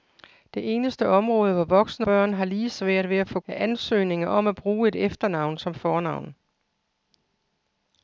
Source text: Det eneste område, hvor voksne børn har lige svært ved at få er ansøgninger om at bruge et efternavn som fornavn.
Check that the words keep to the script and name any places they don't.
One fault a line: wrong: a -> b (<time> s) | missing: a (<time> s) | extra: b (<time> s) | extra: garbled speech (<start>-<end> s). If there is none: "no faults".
no faults